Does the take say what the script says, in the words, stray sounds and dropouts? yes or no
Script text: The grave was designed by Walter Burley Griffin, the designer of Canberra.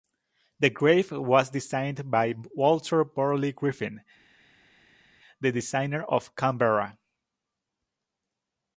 yes